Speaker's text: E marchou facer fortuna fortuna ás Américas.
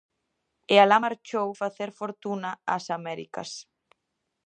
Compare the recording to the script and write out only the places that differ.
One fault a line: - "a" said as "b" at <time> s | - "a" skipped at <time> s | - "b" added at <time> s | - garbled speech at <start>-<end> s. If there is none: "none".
- "alá" added at 0.8 s
- "fortuna" skipped at 2.5 s